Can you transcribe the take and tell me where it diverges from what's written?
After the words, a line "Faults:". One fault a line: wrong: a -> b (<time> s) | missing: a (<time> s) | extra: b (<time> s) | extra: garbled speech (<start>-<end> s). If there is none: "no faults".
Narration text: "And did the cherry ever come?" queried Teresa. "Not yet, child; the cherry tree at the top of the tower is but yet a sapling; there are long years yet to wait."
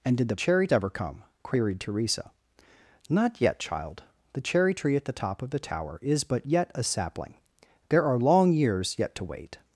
"And did the cherry ever come?" queried Teresa. "Not yet, child; the cherry tree at the top of the tower is but yet a sapling; there are long years yet to wait."
Faults:
no faults